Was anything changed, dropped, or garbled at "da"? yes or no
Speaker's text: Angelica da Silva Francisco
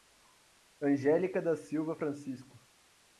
no